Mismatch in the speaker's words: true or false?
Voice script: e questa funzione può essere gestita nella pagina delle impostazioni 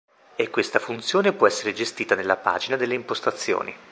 false